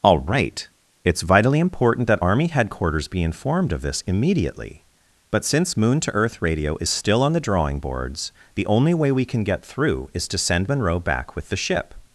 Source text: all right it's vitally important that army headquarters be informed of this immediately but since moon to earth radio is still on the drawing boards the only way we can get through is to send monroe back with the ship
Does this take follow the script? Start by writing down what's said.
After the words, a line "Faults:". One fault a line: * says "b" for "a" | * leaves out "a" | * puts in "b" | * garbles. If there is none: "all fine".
all right it's vitally important that army headquarters be informed of this immediately but since moon to earth radio is still on the drawing boards the only way we can get through is to send monroe back with the ship
Faults:
all fine